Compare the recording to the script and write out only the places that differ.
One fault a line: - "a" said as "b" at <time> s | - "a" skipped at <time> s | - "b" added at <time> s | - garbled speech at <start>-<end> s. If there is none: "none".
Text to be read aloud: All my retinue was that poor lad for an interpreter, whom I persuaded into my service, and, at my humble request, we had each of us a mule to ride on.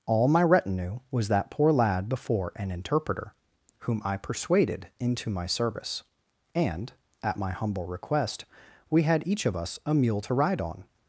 - "for" said as "before" at 2.1 s